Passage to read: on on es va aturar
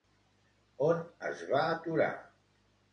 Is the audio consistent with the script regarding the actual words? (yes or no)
no